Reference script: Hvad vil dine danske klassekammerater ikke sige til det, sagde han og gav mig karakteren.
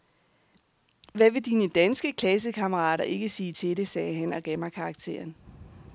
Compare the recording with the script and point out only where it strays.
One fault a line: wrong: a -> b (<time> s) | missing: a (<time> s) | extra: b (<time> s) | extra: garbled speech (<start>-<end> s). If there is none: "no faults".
no faults